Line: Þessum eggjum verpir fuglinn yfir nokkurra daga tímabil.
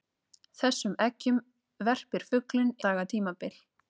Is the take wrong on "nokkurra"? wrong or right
wrong